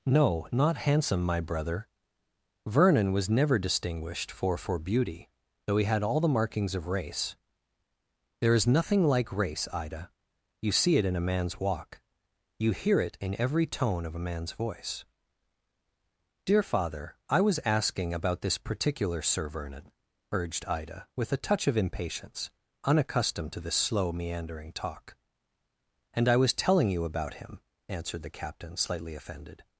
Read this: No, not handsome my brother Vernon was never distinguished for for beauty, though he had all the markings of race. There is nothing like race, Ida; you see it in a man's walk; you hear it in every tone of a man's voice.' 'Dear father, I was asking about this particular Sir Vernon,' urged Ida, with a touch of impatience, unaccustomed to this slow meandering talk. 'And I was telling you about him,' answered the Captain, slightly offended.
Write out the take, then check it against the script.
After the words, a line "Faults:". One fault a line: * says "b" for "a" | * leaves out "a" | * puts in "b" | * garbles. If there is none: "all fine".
No, not handsome my brother Vernon was never distinguished for for beauty, though he had all the markings of race. There is nothing like race, Ida; you see it in a man's walk; you hear it in every tone of a man's voice.' 'Dear father, I was asking about this particular Sir Vernon,' urged Ida, with a touch of impatience, unaccustomed to this slow meandering talk. 'And I was telling you about him,' answered the Captain, slightly offended.
Faults:
all fine